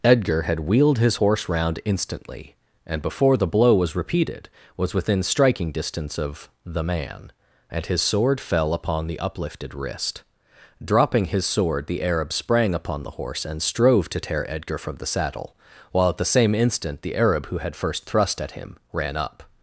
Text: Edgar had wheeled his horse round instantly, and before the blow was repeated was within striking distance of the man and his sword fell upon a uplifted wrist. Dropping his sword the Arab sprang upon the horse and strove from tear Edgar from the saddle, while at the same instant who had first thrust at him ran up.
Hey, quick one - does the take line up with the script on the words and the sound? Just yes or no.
no